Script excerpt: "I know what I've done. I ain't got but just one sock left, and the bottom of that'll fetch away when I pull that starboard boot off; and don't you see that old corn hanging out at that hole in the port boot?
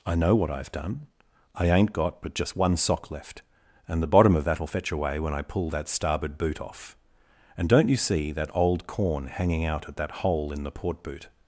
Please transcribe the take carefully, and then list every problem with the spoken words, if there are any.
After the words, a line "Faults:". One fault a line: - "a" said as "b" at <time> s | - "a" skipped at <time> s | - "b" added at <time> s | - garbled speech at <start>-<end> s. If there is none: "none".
"I know what I've done. I ain't got but just one sock left, and the bottom of that'll fetch away when I pull that starboard boot off; and don't you see that old corn hanging out at that hole in the port boot?
Faults:
none